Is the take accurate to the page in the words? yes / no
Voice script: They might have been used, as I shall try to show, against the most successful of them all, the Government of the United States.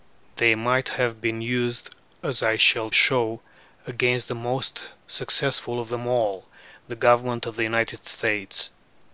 no